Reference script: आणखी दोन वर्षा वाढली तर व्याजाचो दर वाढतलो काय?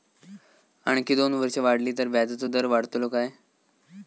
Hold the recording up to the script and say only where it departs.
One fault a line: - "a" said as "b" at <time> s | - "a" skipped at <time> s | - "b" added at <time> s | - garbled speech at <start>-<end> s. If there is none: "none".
none